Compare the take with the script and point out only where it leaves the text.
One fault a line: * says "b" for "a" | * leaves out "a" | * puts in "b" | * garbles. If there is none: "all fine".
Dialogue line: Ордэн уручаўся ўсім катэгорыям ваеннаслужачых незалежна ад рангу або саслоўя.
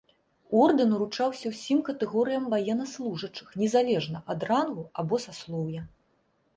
all fine